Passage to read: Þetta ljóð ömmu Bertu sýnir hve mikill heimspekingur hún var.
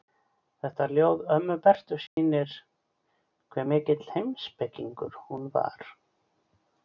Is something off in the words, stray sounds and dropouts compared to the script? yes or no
yes